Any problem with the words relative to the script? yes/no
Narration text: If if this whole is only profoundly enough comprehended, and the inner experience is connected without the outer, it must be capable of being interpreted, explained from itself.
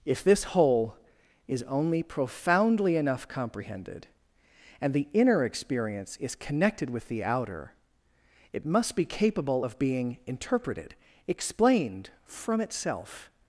yes